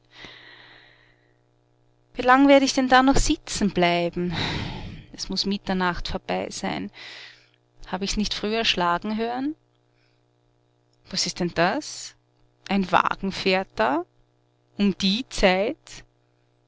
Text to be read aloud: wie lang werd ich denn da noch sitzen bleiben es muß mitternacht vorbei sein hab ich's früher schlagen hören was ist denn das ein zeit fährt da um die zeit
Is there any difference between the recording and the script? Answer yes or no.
yes